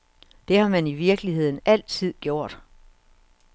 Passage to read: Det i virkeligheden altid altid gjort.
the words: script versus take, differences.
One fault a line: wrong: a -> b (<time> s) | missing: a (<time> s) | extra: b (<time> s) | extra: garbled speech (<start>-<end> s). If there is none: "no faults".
extra: har man (0.6 s)
missing: altid (2.1 s)